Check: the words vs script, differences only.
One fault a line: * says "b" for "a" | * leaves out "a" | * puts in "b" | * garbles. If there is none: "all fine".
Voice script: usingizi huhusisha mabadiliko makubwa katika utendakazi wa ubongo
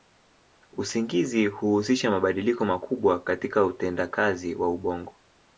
all fine